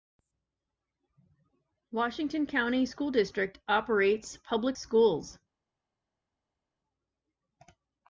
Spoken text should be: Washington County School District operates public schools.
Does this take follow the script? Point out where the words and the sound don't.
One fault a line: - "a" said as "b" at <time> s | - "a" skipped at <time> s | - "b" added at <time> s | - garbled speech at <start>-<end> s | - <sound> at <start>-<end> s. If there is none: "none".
none